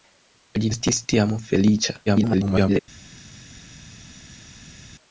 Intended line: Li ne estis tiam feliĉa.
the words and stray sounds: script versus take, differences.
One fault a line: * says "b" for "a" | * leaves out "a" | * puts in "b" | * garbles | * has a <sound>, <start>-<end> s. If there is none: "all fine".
* leaves out "ne"
* garbles